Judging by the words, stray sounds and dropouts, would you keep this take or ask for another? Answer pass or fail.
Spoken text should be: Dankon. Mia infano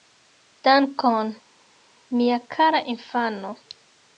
fail